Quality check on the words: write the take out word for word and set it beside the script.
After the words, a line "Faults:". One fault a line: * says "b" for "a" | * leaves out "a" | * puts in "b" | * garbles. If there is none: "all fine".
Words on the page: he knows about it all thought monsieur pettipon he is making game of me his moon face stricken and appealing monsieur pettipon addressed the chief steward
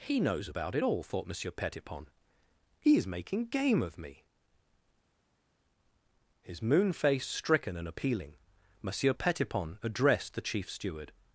he knows about it all thought monsieur pettipon he is making game of me his moon face stricken and appealing monsieur pettipon addressed the chief steward
Faults:
all fine